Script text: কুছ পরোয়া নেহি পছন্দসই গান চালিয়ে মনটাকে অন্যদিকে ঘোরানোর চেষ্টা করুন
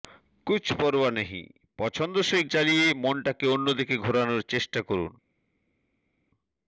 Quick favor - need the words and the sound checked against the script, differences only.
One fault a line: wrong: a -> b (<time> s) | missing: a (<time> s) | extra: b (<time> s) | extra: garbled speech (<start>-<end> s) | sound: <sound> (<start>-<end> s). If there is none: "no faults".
missing: গান (2.4 s)